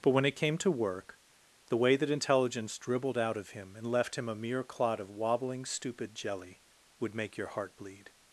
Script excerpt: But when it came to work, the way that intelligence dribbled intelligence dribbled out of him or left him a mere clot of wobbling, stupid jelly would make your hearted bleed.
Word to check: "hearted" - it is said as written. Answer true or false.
false